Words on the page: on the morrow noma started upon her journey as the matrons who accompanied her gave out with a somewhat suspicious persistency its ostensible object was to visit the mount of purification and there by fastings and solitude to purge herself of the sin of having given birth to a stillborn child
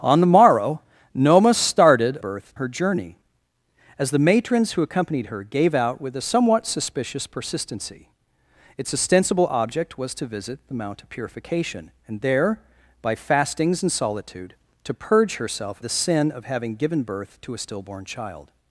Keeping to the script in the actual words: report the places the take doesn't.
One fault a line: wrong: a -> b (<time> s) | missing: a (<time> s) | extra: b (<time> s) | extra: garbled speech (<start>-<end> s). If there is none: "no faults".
wrong: upon -> birth (2.2 s)
missing: of (15.8 s)